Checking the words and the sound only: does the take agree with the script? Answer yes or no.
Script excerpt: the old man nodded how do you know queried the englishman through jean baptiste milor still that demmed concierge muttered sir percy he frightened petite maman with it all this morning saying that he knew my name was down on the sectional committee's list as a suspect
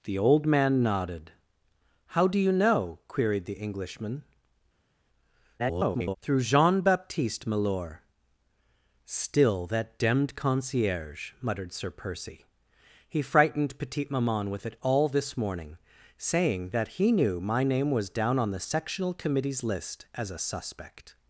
no